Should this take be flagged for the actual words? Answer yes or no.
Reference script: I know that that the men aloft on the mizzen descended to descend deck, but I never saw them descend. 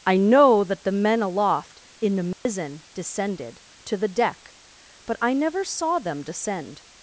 yes